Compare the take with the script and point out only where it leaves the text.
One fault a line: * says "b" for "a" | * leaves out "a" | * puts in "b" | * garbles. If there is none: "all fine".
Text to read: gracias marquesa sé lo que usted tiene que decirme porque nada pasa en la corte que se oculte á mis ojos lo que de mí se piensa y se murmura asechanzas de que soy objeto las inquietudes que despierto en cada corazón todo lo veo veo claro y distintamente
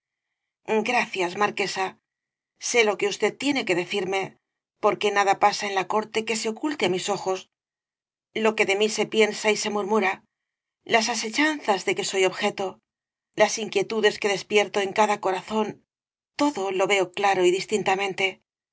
* puts in "las"
* leaves out "veo"